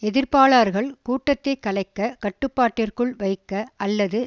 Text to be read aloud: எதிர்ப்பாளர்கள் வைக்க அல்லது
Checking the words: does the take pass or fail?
fail